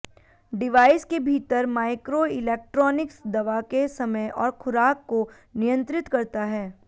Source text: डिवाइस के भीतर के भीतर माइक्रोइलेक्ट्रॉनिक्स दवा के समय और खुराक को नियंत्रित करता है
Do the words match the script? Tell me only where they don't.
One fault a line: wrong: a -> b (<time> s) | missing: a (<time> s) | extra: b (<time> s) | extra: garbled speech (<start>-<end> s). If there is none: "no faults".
missing: के भीतर (1.6 s)